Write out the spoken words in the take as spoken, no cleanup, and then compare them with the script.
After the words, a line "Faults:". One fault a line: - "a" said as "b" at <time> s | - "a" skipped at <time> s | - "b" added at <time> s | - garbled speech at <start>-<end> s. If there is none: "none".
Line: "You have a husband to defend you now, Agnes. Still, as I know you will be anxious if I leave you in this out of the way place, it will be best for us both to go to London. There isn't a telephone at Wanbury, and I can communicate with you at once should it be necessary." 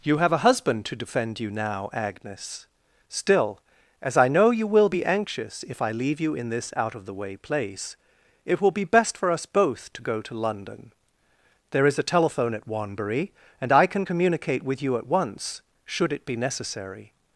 "You have a husband to defend you now, Agnes. Still, as I know you will be anxious if I leave you in this out of the way place, it will be best for us both to go to London. There is a telephone at Wanbury, and I can communicate with you at once should it be necessary."
Faults:
- "isn't" said as "is" at 11.9 s